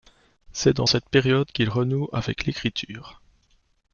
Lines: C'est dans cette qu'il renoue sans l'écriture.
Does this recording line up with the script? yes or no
no